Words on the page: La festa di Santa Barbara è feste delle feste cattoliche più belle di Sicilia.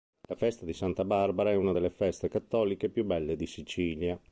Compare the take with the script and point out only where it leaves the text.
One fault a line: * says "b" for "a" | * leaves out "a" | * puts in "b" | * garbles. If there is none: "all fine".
* says "una" for "feste"